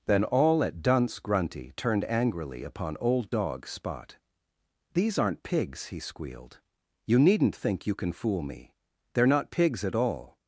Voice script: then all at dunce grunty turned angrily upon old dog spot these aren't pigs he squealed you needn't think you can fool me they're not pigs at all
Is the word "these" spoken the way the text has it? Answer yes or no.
yes